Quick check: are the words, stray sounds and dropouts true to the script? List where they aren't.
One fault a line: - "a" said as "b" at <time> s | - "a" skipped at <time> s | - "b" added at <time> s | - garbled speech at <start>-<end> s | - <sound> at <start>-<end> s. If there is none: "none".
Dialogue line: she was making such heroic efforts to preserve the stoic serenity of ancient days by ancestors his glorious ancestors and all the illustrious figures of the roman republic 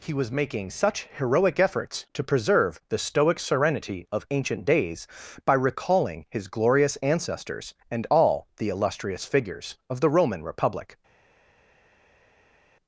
- "she" said as "he" at 0.0 s
- "ancestors" said as "recalling" at 5.5 s